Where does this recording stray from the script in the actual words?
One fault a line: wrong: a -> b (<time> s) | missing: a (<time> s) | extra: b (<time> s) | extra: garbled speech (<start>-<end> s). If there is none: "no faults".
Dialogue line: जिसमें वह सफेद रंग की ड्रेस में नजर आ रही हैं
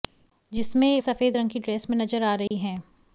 missing: वह (1.0 s)